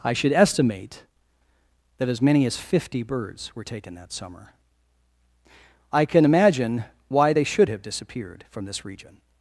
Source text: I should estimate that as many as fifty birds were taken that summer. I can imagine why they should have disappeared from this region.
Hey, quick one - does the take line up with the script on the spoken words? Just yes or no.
yes